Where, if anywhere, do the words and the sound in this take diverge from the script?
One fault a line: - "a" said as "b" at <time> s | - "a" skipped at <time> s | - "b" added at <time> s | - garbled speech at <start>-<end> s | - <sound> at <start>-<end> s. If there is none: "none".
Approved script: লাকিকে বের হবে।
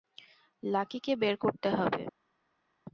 - "করতে" added at 1.4 s